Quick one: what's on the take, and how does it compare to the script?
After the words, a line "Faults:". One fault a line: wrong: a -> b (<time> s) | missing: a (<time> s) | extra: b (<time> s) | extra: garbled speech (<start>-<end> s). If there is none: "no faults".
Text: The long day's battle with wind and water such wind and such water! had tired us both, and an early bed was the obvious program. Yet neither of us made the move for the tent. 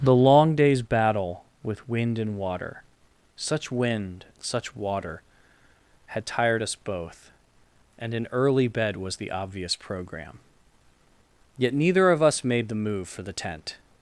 The long day's battle with wind and water such wind such water! had tired us both, and an early bed was the obvious program. Yet neither of us made the move for the tent.
Faults:
missing: and (4.2 s)